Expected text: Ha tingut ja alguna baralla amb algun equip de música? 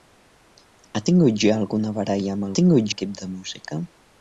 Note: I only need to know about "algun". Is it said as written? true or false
false